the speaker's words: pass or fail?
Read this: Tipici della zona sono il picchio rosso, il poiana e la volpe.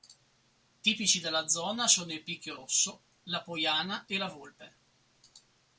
fail